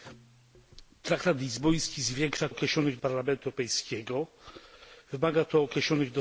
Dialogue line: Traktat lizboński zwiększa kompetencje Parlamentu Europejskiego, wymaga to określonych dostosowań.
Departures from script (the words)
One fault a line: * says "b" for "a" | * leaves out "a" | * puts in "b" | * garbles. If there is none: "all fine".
* says "określonych" for "kompetencje"